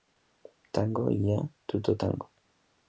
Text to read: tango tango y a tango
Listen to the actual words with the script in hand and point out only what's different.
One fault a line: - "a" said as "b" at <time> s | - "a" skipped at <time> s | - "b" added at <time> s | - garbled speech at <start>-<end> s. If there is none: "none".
- "tango" skipped at 1.1 s
- "tutto" added at 1.7 s